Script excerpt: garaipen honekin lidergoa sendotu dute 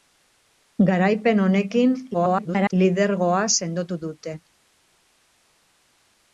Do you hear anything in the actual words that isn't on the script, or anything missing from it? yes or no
yes